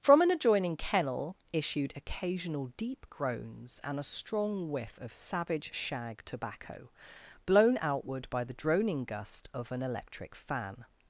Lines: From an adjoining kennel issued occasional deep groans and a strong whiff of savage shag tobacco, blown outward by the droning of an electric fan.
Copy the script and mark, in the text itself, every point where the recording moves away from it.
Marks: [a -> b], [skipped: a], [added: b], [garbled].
From an adjoining kennel issued occasional deep groans and a strong whiff of savage shag tobacco, blown outward by the droning [added: gust] of an electric fan.